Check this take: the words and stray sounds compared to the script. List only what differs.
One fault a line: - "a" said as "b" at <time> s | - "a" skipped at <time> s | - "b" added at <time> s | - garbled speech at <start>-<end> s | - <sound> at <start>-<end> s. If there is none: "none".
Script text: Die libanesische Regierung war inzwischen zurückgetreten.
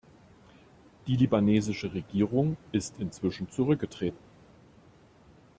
- "war" said as "ist" at 2.7 s